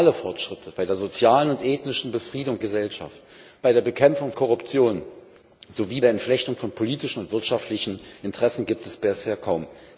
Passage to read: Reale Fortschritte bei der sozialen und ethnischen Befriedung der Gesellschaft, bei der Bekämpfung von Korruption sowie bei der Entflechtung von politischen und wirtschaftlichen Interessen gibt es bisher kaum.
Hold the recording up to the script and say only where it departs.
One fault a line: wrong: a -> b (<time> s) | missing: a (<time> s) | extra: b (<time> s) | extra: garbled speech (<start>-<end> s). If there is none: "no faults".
missing: der (2.6 s)
missing: von (4.3 s)
missing: bei (6.0 s)